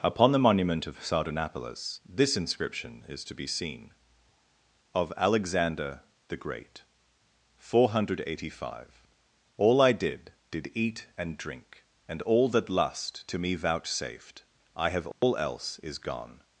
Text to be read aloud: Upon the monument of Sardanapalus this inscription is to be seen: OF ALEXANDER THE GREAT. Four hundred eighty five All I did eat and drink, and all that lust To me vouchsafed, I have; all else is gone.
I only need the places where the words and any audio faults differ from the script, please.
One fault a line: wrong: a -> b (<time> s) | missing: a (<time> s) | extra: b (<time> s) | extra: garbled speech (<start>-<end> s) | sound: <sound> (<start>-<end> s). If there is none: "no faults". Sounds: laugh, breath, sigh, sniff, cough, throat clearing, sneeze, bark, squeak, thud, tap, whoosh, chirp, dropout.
extra: did (10.5 s)
sound: dropout (15.1-15.2 s)